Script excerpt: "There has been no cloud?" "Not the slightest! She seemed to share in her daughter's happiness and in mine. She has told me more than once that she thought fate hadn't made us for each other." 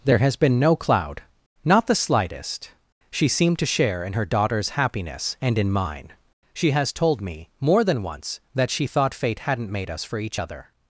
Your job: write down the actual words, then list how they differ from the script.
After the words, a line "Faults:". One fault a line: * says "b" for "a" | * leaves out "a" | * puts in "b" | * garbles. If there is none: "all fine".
"There has been no cloud?" "Not the slightest! She seemed to share in her daughter's happiness and in mine. She has told me more than once that she thought fate hadn't made us for each other."
Faults:
all fine